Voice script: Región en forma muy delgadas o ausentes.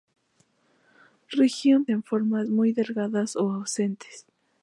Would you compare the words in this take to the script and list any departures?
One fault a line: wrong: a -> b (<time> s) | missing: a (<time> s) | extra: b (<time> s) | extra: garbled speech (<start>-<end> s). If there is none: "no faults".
no faults